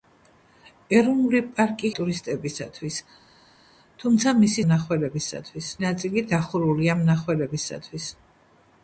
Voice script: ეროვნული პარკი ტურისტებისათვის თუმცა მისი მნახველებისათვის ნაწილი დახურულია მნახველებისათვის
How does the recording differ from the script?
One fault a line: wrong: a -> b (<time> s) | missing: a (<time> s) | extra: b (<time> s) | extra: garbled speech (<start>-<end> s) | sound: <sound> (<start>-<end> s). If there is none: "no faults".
no faults